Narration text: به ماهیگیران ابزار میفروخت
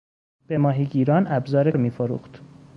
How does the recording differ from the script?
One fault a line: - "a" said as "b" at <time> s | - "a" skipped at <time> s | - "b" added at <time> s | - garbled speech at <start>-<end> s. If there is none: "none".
none